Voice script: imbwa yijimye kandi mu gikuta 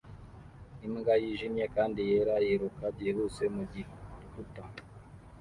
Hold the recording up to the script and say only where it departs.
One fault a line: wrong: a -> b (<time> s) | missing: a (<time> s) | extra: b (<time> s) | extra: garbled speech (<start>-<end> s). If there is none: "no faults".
extra: yera yiruka byihuse (2.1 s)